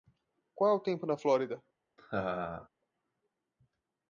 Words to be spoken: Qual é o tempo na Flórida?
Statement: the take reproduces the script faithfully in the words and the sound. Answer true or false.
false